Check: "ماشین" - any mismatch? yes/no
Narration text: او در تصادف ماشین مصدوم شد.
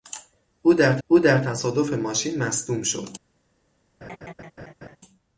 no